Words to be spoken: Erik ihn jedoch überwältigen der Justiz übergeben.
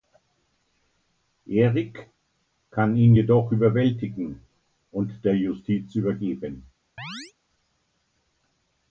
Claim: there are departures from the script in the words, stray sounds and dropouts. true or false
true